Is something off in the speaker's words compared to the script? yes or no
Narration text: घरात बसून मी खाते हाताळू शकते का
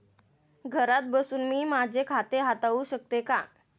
yes